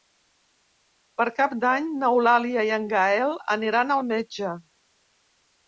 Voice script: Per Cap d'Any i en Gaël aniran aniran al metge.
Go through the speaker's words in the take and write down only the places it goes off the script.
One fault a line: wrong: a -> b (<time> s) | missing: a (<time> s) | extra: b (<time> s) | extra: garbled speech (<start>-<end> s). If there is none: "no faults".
extra: n'Eulàlia (2.0 s)
missing: aniran (4.0 s)